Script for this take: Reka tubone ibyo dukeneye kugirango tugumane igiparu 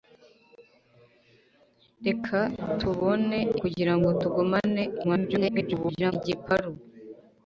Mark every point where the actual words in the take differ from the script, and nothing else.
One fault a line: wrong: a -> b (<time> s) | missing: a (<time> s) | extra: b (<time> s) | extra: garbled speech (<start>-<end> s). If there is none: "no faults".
missing: ibyo dukeneye (3.4 s)
extra: garbled speech (5.0-6.1 s)